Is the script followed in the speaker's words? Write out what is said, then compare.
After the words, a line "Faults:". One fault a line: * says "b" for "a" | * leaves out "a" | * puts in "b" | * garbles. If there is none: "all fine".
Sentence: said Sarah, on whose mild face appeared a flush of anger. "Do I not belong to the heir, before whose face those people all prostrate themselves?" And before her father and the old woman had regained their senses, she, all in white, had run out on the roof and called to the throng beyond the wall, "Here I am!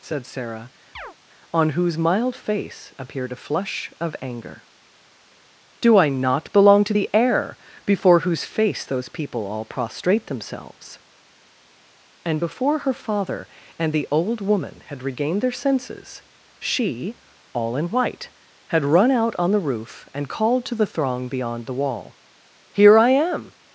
said Sarah, on whose mild face appeared a flush of anger. "Do I not belong to the heir, before whose face those people all prostrate themselves?" And before her father and the old woman had regained their senses, she, all in white, had run out on the roof and called to the throng beyond the wall, "Here I am!
Faults:
all fine